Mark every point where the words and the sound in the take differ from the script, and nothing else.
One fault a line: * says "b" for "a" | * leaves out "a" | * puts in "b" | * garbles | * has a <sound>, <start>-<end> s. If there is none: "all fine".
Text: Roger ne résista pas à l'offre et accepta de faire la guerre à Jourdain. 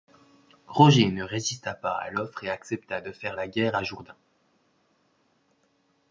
all fine